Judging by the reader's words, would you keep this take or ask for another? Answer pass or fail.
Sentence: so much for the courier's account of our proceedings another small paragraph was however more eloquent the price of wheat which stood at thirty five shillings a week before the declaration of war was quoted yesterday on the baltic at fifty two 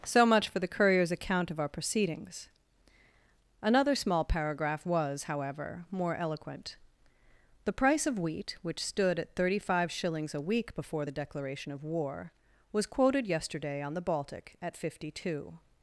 pass